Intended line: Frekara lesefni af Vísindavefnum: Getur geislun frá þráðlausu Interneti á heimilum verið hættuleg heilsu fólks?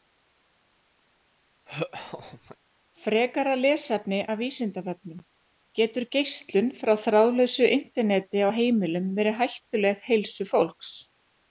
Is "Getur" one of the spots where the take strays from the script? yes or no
no